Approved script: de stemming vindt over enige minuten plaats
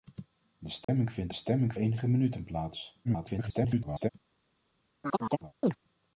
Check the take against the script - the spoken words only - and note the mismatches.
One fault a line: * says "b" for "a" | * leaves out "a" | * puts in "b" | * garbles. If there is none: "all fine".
* says "stemming" for "over"
* garbles